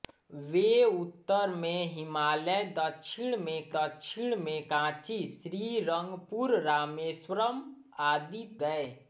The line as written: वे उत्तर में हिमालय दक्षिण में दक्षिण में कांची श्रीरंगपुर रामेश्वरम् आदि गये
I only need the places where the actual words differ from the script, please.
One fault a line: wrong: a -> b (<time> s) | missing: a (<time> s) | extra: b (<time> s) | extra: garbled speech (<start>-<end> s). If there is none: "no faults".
no faults